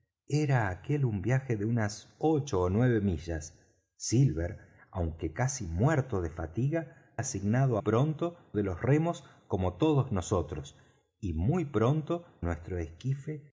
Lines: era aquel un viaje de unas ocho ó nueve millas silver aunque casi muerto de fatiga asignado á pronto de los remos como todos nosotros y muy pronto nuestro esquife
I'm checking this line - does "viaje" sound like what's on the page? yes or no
yes